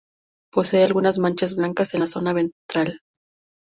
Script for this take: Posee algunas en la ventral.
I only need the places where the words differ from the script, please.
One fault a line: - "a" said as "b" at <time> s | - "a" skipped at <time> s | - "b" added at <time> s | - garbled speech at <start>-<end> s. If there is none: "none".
- "manchas blancas" added at 1.2 s
- "zona" added at 2.1 s